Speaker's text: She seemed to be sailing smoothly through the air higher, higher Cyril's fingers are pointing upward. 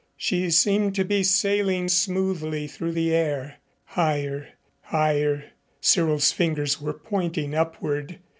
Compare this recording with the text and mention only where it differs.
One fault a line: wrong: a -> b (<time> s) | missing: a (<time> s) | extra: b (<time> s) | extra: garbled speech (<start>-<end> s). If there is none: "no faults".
wrong: are -> were (6.8 s)